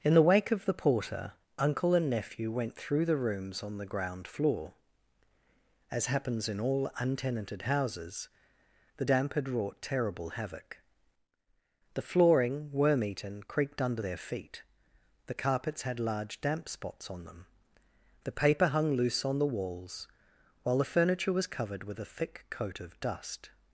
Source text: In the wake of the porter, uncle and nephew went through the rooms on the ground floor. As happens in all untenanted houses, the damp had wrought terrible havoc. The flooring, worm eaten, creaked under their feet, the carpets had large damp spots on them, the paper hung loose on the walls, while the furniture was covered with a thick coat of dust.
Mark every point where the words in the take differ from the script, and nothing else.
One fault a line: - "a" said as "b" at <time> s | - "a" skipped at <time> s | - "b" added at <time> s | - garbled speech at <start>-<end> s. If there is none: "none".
none